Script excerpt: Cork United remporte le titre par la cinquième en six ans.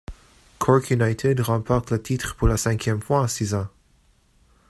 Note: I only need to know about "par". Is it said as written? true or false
false